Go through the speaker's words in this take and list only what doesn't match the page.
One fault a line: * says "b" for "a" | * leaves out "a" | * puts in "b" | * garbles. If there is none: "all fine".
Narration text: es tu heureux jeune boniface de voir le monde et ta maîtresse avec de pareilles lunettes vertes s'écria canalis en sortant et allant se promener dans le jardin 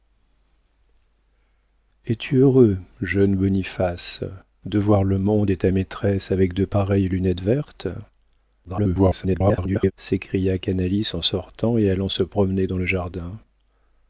* garbles